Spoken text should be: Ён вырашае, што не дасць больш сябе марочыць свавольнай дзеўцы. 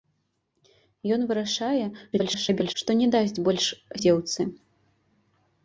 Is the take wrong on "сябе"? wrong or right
wrong